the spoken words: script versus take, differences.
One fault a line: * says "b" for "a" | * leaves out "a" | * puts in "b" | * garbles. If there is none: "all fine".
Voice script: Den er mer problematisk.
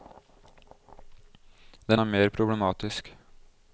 all fine